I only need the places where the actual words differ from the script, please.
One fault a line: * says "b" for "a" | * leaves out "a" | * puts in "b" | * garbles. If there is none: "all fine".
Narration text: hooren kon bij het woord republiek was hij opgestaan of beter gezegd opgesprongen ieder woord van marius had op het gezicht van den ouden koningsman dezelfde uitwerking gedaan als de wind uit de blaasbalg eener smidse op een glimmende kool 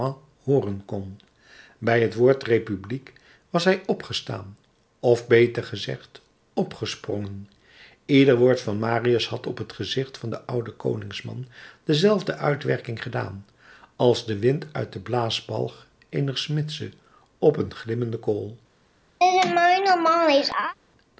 all fine